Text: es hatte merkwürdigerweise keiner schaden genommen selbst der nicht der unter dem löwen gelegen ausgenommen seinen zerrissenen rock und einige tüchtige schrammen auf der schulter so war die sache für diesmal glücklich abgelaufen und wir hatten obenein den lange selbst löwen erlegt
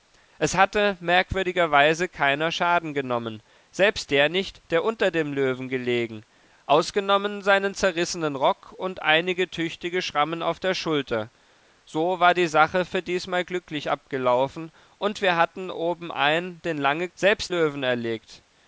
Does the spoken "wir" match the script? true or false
true